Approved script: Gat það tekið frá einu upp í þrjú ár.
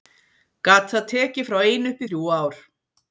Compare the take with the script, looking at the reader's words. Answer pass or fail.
pass